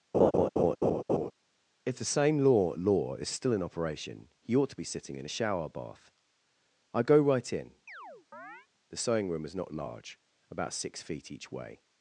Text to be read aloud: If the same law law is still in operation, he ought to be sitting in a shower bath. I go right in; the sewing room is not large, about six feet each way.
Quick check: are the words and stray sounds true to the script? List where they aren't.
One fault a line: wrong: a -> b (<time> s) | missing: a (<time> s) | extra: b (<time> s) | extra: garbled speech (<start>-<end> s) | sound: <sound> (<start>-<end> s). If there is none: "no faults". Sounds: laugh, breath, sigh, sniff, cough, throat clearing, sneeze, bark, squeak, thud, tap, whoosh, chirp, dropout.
sound: laugh (0.1-1.3 s)
sound: chirp (7.9-8.7 s)